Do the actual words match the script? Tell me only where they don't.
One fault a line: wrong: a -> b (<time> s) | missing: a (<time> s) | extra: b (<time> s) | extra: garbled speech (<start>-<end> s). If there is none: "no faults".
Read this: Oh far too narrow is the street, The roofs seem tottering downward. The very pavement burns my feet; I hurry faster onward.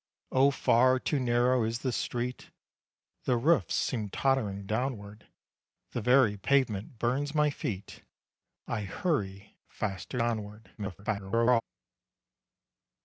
extra: garbled speech (10.8-11.6 s)